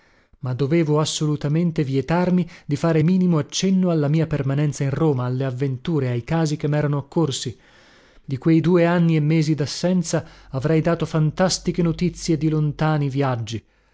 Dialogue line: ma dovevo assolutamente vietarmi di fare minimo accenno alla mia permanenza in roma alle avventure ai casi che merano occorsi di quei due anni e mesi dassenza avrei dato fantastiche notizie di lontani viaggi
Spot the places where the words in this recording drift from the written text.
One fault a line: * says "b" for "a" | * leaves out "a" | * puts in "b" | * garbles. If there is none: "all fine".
all fine